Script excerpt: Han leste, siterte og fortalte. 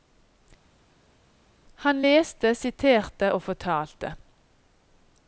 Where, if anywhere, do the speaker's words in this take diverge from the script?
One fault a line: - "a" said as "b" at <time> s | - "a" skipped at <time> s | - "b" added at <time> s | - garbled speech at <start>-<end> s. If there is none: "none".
none